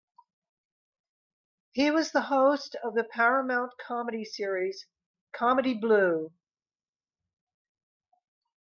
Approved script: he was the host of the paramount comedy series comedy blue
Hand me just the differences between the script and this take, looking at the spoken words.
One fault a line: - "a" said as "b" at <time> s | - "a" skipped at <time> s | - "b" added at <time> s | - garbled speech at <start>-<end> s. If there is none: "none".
none